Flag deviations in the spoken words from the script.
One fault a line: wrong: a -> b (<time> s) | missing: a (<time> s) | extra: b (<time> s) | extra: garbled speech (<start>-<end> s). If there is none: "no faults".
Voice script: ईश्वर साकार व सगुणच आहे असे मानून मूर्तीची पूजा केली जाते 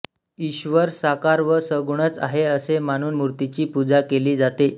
no faults